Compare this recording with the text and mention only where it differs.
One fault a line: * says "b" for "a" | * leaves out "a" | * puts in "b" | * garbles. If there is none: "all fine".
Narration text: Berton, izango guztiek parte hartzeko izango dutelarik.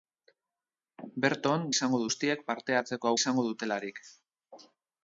all fine